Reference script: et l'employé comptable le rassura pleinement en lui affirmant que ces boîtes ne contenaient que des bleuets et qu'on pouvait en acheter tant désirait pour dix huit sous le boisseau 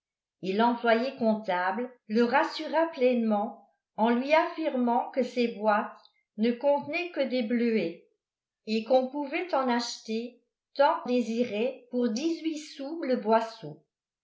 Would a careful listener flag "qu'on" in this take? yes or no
no